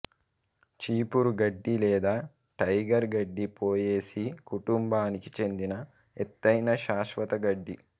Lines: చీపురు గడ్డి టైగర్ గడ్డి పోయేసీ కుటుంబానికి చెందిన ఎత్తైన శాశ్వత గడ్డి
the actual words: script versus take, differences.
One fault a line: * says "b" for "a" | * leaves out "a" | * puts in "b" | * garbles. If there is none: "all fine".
* puts in "లేదా"